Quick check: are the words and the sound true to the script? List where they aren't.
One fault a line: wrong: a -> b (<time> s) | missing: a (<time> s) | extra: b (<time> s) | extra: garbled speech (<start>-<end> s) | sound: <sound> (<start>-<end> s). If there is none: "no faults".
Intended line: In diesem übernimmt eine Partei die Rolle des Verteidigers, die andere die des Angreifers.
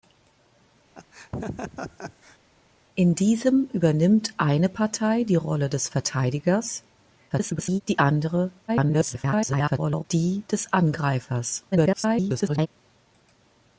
sound: laugh (1.0-2.4 s)
extra: garbled speech (7.3-7.8 s)
extra: garbled speech (8.7-10.0 s)
extra: garbled speech (11.7-12.7 s)